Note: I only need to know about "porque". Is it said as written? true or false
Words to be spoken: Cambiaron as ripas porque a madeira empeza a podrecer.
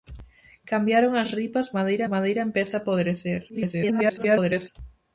false